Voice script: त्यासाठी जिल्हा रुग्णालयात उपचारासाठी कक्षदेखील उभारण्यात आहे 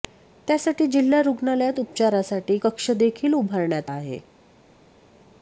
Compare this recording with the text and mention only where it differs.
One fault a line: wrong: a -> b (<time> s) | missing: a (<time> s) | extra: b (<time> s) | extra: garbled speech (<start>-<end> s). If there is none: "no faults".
no faults